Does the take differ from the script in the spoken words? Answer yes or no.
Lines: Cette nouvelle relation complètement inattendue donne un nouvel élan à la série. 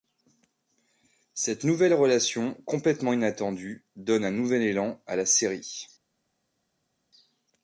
no